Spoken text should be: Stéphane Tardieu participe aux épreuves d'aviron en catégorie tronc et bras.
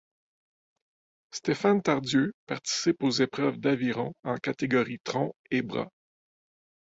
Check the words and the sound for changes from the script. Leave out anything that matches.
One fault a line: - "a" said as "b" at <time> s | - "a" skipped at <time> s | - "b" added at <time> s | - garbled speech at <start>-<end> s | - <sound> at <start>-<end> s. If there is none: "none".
none